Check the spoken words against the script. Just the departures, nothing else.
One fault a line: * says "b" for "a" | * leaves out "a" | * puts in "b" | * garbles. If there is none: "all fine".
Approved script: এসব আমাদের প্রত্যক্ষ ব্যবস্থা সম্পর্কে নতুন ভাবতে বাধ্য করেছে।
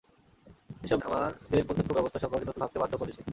all fine